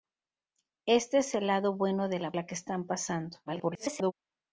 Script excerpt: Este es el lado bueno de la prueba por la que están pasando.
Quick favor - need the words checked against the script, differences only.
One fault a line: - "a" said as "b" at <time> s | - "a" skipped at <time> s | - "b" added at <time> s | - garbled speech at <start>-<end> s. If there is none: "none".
- "prueba por" skipped at 2.3 s
- garbled speech at 3.5-4.1 s